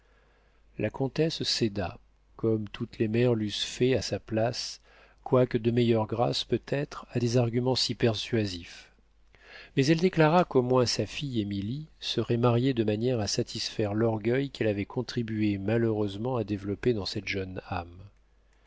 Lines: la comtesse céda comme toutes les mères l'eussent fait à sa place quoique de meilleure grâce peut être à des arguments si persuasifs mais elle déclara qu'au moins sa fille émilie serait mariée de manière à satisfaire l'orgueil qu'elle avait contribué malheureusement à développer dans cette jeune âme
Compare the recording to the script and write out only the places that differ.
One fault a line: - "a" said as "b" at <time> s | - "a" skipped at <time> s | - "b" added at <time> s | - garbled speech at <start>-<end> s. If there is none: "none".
none